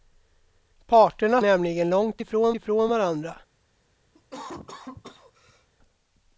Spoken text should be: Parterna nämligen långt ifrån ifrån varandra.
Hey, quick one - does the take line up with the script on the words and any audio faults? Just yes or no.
no